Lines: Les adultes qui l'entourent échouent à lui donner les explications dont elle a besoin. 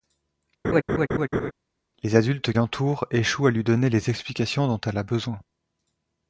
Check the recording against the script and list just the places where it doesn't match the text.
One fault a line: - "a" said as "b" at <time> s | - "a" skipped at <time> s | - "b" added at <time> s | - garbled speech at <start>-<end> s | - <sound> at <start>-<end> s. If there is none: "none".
- laugh at 0.6-1.5 s
- "qui" skipped at 2.5 s